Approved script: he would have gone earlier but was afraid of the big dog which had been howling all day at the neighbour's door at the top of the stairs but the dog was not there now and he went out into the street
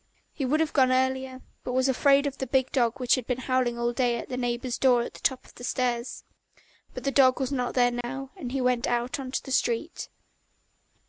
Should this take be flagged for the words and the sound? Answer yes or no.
yes